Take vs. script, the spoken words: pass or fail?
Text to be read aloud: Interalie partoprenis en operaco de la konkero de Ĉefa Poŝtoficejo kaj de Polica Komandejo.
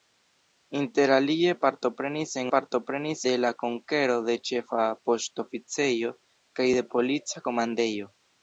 fail